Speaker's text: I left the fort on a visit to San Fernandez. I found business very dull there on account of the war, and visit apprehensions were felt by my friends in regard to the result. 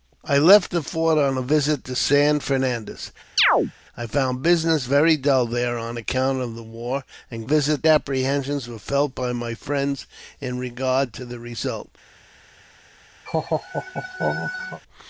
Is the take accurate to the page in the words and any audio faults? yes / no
no